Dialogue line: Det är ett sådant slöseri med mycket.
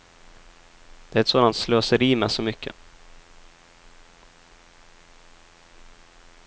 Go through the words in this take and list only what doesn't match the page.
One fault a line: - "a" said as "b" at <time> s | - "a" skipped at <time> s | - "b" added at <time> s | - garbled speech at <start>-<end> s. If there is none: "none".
- "så" added at 2.3 s